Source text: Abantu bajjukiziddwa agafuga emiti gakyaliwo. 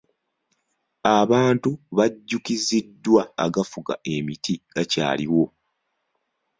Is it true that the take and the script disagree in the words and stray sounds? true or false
false